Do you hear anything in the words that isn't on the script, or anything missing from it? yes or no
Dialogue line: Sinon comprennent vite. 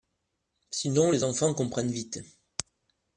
yes